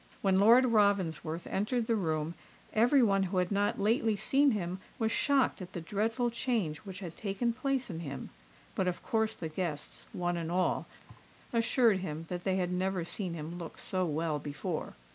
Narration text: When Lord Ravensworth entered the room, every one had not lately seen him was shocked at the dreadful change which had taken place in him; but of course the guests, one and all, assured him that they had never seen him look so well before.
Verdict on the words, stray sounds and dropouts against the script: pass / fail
fail